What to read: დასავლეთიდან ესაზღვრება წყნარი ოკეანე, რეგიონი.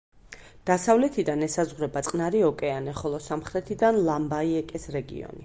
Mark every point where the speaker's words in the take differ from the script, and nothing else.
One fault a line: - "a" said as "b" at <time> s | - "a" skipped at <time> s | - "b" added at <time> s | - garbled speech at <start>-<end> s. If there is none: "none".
- "ხოლო სამხრეთიდან ლამბაიეკეს" added at 3.0 s